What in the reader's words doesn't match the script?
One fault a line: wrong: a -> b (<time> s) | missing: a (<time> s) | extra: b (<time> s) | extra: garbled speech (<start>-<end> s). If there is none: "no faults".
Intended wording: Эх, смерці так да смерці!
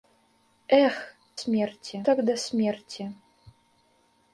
no faults